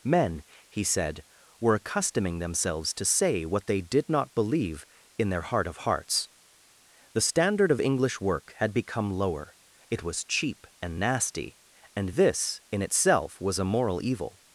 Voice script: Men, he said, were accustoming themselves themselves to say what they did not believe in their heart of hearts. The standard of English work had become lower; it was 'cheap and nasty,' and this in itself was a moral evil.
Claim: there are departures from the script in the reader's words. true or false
true